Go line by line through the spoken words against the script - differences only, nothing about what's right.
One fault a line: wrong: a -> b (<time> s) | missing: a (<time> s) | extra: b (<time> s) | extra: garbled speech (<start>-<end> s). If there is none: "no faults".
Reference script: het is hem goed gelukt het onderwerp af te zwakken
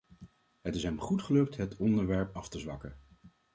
no faults